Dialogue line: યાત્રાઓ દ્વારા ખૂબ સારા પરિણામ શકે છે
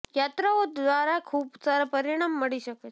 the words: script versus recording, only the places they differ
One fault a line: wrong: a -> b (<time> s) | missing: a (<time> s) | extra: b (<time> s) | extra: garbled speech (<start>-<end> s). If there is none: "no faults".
extra: મળી (2.4 s)